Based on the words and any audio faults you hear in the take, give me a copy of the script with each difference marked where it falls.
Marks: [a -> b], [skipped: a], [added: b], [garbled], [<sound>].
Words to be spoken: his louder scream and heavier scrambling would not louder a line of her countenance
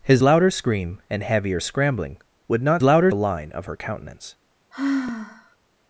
his louder scream and heavier scrambling would not louder a line of her countenance [sigh]